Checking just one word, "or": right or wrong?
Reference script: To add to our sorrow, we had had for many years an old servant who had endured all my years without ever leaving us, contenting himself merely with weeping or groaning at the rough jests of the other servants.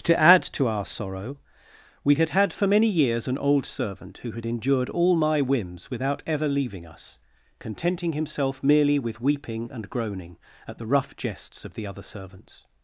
wrong